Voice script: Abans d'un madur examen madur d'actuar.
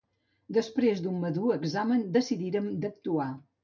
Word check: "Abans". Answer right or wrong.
wrong